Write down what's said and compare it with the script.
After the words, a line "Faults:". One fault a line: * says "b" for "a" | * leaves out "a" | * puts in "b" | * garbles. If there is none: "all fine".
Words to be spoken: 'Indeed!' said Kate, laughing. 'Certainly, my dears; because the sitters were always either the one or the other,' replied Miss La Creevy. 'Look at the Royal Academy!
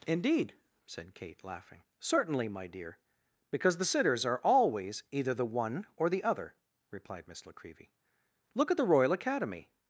'Indeed!' said Kate, laughing. 'Certainly, my dear; because the sitters are always either the one or the other,' replied Miss La Creevy. 'Look at the Royal Academy!
Faults:
* says "dear" for "dears"
* says "are" for "were"